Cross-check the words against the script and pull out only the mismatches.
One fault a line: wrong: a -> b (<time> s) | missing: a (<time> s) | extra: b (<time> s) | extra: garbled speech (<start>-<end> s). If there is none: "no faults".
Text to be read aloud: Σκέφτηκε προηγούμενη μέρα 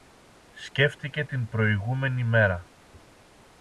extra: την (1.2 s)